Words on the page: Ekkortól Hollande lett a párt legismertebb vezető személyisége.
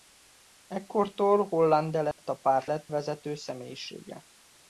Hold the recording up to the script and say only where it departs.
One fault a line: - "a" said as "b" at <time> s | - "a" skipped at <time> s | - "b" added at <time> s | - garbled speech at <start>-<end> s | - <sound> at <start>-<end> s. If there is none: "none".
- dropout at 2.1-2.2 s
- "legismertebb" said as "lett" at 2.6 s